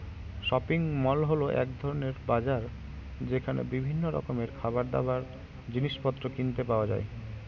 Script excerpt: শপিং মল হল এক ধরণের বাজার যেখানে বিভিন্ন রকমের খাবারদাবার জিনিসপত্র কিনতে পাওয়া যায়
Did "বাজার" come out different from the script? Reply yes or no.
no